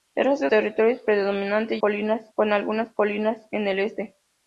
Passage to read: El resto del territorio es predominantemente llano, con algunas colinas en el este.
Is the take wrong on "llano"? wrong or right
wrong